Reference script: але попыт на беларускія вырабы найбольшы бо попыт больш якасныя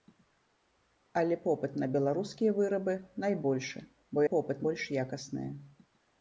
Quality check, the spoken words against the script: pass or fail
pass